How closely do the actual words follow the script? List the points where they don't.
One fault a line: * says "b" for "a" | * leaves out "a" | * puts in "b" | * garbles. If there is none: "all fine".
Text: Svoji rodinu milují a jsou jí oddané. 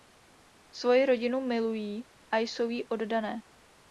all fine